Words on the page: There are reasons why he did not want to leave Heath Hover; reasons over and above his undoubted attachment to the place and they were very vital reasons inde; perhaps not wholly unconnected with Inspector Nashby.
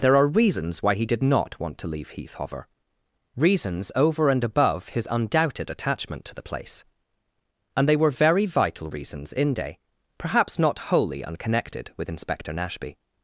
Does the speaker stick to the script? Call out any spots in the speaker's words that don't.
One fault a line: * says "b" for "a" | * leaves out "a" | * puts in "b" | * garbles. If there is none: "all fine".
all fine